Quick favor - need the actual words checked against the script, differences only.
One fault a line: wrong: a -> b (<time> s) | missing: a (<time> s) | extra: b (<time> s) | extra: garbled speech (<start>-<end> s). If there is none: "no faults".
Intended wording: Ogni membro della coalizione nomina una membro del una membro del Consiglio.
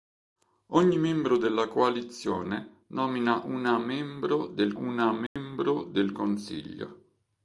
no faults